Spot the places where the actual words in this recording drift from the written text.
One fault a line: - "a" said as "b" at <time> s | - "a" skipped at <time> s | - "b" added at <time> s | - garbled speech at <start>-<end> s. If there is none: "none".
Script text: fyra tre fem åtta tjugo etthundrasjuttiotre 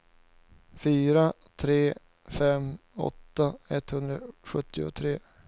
- "tjugo" skipped at 3.5 s